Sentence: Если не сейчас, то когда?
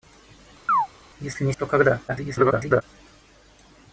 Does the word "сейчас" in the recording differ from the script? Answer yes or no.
yes